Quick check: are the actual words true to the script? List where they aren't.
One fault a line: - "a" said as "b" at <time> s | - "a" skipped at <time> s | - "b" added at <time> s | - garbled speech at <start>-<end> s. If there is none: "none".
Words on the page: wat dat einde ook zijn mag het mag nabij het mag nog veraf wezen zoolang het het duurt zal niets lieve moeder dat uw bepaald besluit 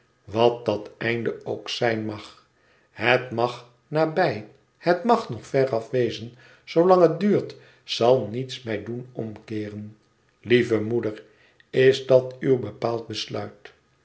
- "het" skipped at 7.2 s
- "mij doen omkeeren" added at 8.6 s
- "is" added at 11.7 s